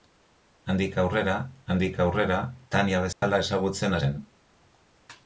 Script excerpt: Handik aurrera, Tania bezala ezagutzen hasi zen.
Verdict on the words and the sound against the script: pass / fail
fail